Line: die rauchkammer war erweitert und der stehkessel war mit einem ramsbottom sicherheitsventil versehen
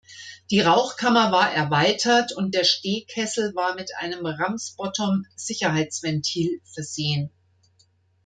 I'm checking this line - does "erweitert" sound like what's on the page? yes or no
yes